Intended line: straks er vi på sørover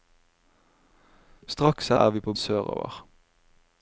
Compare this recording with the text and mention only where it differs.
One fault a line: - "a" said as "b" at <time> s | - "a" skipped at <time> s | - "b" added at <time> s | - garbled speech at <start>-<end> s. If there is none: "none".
none